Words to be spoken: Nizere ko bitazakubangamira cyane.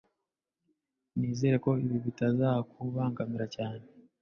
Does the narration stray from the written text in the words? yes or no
yes